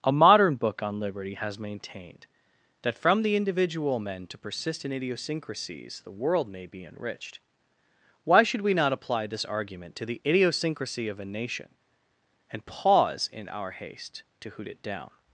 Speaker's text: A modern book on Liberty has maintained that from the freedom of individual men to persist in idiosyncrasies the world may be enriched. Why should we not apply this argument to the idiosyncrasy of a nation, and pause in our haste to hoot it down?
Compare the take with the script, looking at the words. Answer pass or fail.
fail